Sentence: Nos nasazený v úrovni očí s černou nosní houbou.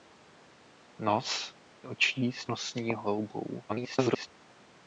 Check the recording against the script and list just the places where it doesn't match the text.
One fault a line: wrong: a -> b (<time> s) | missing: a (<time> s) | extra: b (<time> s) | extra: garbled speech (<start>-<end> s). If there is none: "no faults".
missing: nasazený v úrovni (1.5 s)
missing: černou (2.5 s)
extra: garbled speech (3.7-4.3 s)